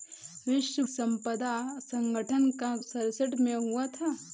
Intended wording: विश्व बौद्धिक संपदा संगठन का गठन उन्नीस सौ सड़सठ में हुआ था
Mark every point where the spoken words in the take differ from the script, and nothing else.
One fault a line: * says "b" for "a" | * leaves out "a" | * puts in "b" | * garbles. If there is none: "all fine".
* leaves out "बौद्धिक"
* leaves out "गठन उन्नीस सौ"